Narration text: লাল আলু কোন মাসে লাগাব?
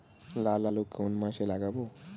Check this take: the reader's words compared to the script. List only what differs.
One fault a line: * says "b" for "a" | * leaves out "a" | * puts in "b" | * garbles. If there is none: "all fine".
all fine